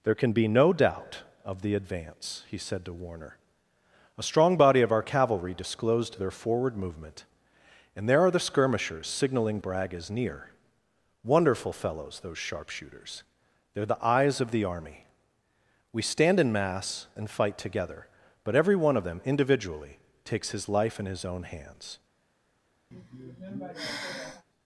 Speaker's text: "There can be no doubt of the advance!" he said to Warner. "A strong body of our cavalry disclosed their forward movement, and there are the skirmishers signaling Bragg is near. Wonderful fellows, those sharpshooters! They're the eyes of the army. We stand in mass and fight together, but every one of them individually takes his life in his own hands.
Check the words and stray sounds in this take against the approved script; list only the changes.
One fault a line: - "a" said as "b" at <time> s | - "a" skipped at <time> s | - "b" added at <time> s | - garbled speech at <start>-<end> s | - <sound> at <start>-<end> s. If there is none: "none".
- sigh at 22.9-24.4 s